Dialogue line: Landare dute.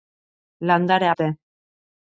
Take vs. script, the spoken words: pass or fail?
pass